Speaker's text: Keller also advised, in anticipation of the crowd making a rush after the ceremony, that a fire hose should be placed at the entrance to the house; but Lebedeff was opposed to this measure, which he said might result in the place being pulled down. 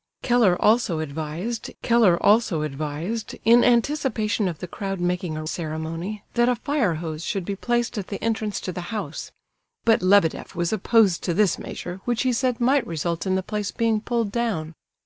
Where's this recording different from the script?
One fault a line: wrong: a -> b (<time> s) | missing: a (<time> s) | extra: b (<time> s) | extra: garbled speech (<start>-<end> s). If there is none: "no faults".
extra: keller also advised (1.8 s)
missing: rush after the (5.4 s)